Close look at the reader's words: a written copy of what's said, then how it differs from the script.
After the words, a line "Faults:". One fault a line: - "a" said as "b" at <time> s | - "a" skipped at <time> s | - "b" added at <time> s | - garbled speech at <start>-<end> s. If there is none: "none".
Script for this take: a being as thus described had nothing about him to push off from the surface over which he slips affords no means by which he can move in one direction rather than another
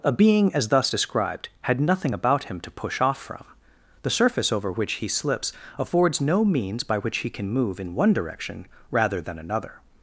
a being as thus described had nothing about him to push off from the surface over which he slips affords no means by which he can move in one direction rather than another
Faults:
none